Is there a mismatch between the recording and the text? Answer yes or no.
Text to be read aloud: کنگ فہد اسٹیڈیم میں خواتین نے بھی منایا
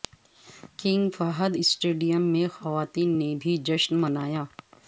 yes